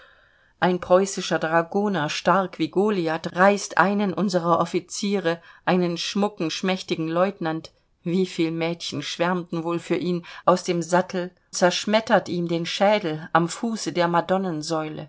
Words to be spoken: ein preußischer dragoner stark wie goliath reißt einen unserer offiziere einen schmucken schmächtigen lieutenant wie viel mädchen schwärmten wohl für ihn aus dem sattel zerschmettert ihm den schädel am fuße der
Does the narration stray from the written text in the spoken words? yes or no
no